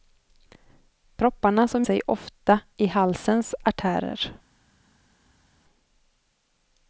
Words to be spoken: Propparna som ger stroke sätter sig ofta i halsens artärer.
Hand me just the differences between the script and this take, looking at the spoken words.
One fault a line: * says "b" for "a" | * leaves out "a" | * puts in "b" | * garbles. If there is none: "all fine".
* leaves out "ger stroke sätter"